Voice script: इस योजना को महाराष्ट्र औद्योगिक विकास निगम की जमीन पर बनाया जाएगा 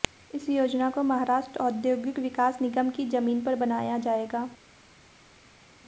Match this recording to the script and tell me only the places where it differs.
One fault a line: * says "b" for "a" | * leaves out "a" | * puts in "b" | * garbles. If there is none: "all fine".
all fine